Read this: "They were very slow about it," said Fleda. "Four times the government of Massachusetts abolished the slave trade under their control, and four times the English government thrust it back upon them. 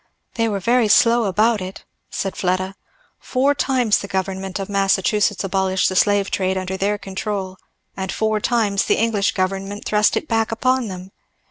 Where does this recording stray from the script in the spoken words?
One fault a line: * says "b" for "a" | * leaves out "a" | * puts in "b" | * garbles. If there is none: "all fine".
all fine